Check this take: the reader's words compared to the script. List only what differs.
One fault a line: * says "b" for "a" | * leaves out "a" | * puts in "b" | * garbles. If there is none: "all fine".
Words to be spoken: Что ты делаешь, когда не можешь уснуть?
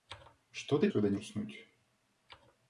* leaves out "делаешь"
* leaves out "можешь"